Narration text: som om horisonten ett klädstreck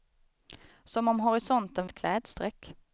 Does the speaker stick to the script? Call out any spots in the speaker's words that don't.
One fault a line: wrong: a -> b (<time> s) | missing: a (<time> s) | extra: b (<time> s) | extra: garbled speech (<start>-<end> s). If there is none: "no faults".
no faults